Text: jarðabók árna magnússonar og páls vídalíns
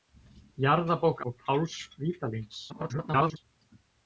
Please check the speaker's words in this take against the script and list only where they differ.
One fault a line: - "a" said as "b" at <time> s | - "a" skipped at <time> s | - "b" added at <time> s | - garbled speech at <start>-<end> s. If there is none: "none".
- "árna magnússonar" skipped at 1.2 s
- garbled speech at 2.7-3.4 s